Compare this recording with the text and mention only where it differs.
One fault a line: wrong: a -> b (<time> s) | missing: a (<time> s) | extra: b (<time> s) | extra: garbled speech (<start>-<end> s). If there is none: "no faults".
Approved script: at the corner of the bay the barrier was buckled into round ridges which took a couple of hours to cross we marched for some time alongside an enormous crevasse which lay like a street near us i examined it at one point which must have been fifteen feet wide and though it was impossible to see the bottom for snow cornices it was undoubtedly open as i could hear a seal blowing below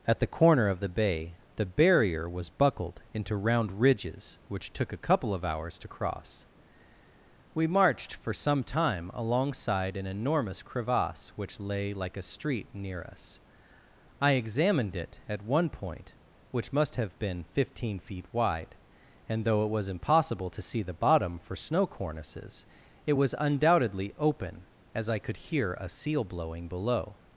no faults